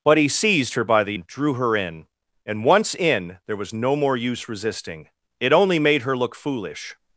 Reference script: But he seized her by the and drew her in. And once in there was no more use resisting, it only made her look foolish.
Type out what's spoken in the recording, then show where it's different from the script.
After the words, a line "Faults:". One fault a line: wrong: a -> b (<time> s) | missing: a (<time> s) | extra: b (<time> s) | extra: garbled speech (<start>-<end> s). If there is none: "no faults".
But he seized her by the and drew her in. And once in there was no more use resisting, it only made her look foolish.
Faults:
no faults